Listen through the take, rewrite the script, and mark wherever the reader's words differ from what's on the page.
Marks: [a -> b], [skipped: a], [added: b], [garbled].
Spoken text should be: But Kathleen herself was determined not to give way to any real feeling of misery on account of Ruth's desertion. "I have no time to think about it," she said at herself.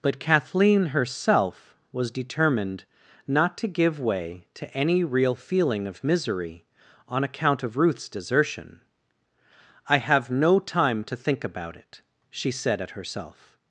But Kathleen herself was determined not to give way to any real feeling of misery on account of Ruth's desertion. "I have no time to think about it," she said at herself.